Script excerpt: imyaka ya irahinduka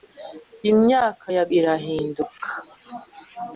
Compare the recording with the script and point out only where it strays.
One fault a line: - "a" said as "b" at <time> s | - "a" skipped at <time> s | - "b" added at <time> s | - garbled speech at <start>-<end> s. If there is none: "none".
none